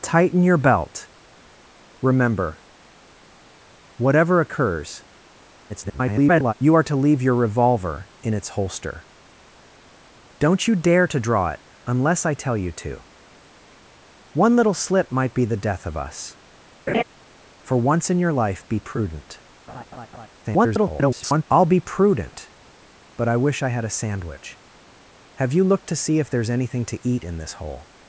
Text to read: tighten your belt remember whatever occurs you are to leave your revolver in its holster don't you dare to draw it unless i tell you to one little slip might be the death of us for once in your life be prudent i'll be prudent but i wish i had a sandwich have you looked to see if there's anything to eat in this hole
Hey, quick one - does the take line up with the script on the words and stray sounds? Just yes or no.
no